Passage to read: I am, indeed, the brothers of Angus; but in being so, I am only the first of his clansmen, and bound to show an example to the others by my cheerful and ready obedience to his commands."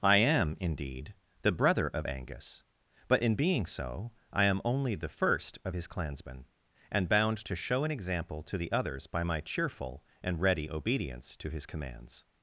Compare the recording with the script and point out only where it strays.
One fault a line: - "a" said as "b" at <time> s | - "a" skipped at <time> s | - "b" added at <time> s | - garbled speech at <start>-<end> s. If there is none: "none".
- "brothers" said as "brother" at 1.5 s